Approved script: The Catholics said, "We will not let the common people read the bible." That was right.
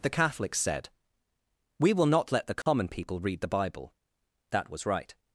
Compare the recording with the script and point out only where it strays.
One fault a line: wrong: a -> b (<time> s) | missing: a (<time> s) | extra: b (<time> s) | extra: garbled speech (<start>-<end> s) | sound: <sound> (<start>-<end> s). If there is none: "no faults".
sound: dropout (2.6-2.7 s)